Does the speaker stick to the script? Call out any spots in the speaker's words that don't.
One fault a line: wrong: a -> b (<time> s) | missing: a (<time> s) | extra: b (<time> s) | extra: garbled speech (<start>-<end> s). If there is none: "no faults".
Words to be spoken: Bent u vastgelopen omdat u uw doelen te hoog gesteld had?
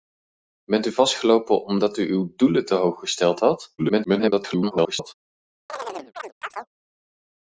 extra: garbled speech (3.8-5.1 s)